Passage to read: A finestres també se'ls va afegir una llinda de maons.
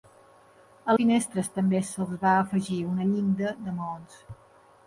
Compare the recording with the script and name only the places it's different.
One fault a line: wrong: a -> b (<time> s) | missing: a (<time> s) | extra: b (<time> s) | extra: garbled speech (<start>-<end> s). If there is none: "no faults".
no faults